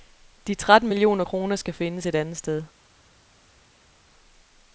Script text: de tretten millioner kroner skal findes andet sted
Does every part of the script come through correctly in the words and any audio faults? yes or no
no